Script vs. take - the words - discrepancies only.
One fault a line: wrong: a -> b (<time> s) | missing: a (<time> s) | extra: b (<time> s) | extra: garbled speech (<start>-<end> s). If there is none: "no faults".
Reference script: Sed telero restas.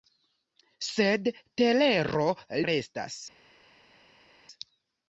no faults